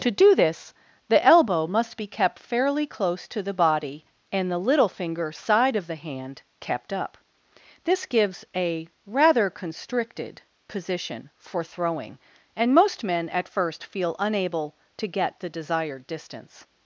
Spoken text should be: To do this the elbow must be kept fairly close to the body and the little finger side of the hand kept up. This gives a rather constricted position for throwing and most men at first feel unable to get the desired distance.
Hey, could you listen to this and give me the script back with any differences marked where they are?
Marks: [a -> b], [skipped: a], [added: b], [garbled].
To do this the elbow must be kept fairly close to the body and the little finger side of the hand kept up. This gives a rather constricted position for throwing and most men at first feel unable to get the desired distance.